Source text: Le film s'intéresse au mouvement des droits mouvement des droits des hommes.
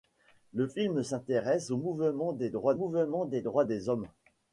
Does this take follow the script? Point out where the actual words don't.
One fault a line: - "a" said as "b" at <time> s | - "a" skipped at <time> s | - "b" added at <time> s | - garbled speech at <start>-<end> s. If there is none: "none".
none